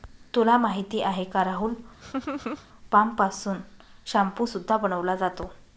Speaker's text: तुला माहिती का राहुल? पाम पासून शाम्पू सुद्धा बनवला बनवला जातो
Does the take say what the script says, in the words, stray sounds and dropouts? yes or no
no